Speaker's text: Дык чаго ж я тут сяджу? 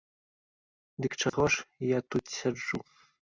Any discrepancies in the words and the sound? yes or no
yes